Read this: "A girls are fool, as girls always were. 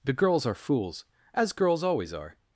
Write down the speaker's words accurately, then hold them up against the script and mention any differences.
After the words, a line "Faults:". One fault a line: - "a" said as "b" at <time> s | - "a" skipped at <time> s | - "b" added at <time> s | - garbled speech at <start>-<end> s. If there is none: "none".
"The girls are fools, as girls always are.
Faults:
- "A" said as "The" at 0.0 s
- "fool" said as "fools" at 0.6 s
- "were" said as "are" at 2.1 s